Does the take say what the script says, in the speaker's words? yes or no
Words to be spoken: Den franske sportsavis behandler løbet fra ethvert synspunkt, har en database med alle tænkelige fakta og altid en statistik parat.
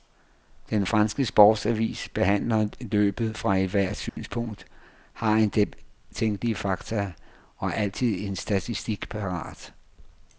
no